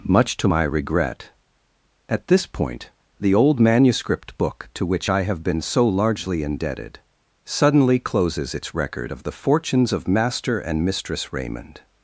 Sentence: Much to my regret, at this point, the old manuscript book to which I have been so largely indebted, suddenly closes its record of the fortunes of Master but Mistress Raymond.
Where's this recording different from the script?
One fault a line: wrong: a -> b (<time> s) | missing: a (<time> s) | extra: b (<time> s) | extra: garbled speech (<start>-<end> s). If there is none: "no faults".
wrong: but -> and (10.6 s)